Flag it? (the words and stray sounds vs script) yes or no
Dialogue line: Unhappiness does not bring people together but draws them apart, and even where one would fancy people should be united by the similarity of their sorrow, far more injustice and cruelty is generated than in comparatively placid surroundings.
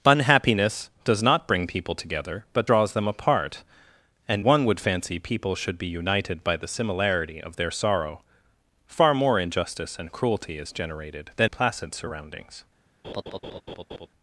yes